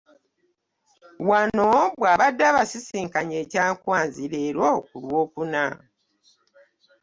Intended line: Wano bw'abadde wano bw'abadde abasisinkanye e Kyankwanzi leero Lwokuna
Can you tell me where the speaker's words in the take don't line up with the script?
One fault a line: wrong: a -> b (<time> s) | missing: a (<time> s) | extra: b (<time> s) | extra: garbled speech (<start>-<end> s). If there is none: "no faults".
missing: wano bw'abadde (2.4 s)
extra: ku (4.9 s)